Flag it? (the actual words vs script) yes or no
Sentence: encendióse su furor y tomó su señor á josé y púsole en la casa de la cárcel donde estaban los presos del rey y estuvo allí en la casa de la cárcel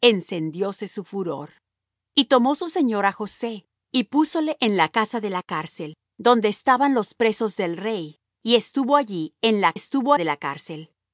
yes